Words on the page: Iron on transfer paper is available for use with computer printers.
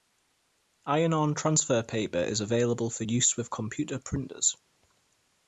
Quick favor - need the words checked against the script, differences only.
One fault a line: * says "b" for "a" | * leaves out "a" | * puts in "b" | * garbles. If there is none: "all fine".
all fine